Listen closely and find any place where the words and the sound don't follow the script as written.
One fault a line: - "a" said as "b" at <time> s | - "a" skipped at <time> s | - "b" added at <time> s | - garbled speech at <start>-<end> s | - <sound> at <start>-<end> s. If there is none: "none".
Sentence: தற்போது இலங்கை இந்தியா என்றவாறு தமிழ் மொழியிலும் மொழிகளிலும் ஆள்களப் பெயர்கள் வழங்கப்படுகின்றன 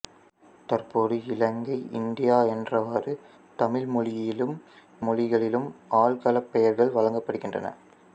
none